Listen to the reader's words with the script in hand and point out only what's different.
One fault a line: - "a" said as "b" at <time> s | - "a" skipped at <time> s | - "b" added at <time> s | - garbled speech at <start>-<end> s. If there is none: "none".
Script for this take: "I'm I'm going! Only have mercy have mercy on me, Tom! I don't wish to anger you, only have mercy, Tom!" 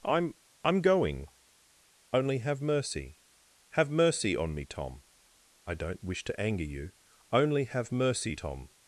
none